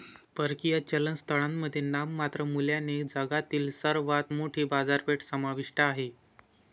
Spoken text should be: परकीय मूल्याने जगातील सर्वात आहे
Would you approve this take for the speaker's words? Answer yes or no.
no